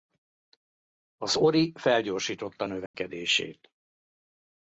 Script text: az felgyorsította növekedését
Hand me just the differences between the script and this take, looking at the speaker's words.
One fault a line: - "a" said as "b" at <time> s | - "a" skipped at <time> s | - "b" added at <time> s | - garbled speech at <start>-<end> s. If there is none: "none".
- "ori" added at 1.4 s